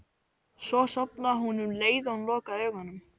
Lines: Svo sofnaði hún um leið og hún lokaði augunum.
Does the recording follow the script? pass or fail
pass